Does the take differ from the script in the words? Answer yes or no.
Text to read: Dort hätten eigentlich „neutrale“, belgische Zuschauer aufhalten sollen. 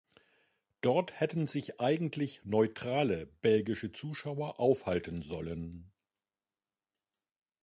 yes